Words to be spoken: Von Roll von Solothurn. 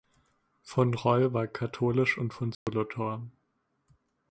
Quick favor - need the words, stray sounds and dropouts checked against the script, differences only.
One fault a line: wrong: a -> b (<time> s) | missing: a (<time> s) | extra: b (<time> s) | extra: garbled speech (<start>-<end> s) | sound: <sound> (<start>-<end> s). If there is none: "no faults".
extra: war katholisch und (1.3 s)
sound: dropout (2.5-2.7 s)